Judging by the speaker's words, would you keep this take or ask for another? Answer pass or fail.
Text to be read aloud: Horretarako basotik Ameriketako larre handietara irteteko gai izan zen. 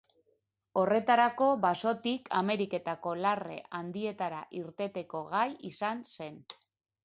pass